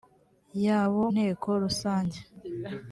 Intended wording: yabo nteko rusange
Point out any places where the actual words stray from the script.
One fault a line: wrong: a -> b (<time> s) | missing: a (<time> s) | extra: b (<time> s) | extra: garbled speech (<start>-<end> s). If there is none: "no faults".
no faults